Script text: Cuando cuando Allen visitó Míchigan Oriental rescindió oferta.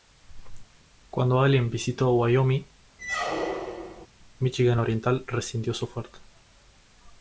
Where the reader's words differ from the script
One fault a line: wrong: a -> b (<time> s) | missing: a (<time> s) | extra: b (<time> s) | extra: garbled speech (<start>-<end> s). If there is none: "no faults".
missing: cuando (1.4 s)
extra: Wyoming (2.1 s)
extra: su (5.7 s)